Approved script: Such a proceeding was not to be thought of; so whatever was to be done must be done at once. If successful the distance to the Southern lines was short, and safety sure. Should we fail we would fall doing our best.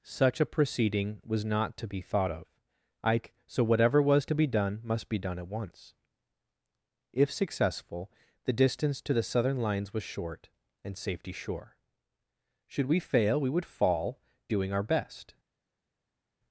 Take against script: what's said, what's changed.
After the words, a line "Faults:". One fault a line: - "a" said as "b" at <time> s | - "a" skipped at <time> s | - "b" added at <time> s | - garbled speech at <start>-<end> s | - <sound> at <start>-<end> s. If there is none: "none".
Such a proceeding was not to be thought of; ike so whatever was to be done must be done at once. If successful the distance to the Southern lines was short, and safety sure. Should we fail we would fall doing our best.
Faults:
- "ike" added at 3.0 s